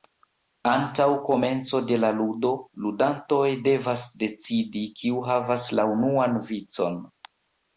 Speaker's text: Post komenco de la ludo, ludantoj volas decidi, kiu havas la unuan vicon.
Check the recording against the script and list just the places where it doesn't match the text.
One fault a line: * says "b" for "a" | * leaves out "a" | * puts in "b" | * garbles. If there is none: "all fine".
* says "Antaŭ" for "Post"
* says "devas" for "volas"